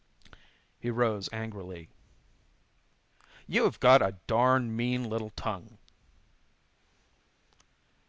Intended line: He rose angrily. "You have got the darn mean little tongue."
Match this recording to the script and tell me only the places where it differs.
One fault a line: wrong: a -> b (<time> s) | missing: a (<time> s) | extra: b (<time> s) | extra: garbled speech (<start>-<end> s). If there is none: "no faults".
wrong: the -> a (4.0 s)